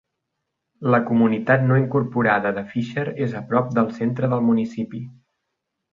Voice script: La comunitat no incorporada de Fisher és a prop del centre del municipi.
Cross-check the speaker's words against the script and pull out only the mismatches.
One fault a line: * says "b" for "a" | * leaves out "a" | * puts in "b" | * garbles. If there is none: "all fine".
all fine